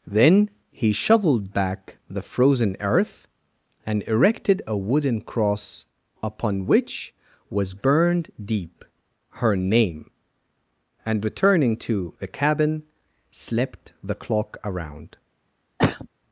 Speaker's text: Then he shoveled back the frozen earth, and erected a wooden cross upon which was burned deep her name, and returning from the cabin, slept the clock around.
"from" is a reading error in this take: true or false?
true